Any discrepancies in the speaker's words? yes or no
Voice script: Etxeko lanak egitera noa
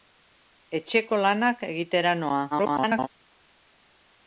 yes